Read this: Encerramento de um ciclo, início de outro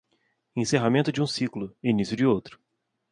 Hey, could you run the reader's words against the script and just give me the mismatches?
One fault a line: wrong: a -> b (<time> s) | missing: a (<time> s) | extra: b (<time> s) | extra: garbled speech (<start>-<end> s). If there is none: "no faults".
no faults